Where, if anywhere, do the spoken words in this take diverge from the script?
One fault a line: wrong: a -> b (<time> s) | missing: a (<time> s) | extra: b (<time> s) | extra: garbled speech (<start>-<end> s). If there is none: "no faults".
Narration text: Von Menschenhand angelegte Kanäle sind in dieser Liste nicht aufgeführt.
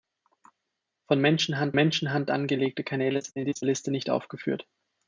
extra: Menschenhand (1.7 s)